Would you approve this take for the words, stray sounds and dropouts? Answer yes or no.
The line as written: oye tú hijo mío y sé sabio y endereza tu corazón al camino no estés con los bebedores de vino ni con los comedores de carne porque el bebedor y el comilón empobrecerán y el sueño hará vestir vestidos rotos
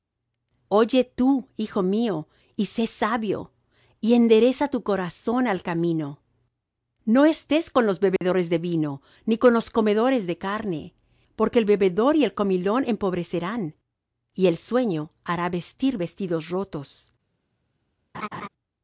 no